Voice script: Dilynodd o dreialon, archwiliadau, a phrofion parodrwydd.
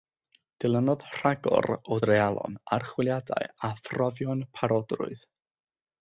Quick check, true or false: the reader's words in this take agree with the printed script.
false